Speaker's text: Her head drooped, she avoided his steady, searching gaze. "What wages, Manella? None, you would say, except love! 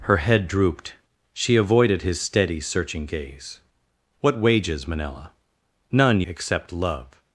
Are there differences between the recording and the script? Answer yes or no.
yes